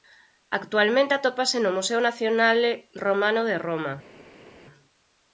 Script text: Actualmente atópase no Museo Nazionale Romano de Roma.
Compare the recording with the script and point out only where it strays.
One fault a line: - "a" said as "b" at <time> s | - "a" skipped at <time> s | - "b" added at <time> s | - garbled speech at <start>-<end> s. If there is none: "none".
none